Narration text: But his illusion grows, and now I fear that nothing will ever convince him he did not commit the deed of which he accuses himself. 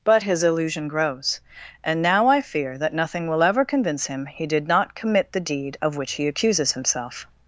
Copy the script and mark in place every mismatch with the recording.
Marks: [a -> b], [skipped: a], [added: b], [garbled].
But his illusion grows, and now I fear that nothing will ever convince him he did not commit the deed of which he accuses himself.